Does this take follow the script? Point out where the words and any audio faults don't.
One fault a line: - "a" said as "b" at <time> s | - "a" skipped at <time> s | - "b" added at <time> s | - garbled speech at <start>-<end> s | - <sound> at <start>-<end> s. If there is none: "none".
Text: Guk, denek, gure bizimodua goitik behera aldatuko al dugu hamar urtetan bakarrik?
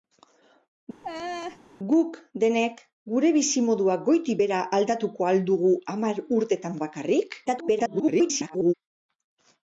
- laugh at 1.0-1.6 s
- garbled speech at 7.5-8.7 s